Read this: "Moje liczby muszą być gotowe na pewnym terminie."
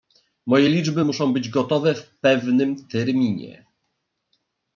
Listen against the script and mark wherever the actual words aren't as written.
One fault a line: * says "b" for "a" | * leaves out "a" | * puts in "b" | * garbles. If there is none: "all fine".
* says "w" for "na"